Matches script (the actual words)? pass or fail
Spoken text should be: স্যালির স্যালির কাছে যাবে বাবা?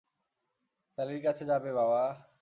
fail